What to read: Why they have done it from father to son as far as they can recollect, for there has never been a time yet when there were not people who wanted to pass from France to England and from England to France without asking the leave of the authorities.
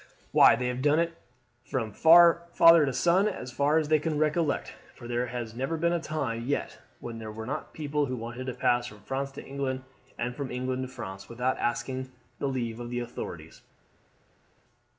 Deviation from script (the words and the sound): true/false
false